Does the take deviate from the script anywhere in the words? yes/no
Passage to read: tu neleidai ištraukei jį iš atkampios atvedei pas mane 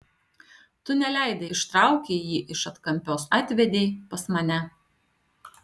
no